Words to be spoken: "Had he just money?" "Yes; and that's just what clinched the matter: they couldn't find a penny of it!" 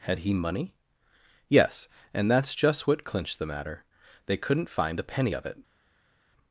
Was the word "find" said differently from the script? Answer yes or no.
no